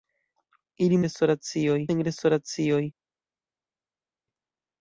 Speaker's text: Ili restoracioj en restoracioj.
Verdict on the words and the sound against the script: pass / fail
pass